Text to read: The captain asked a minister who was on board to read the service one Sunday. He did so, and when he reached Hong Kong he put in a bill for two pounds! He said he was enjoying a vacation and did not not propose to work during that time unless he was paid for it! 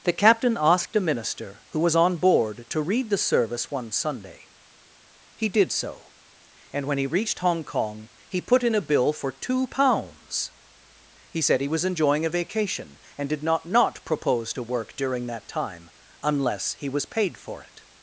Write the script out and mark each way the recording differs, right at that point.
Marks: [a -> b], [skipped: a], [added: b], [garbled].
The captain asked a minister who was on board to read the service one Sunday. He did so, and when he reached Hong Kong he put in a bill for two pounds! He said he was enjoying a vacation and did not not propose to work during that time unless he was paid for it!